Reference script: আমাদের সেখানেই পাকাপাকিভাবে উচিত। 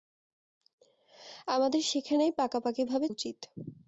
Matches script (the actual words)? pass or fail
pass